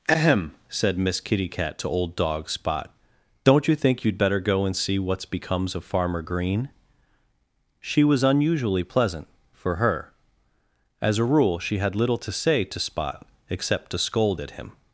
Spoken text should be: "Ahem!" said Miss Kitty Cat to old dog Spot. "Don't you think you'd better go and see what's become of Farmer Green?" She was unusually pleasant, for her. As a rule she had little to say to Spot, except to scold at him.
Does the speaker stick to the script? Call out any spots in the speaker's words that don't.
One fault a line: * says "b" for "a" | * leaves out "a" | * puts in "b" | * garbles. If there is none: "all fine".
* says "becomes" for "become"